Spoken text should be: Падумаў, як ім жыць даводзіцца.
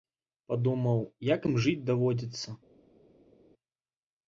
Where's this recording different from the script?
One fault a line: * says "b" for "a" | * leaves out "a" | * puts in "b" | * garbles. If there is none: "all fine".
all fine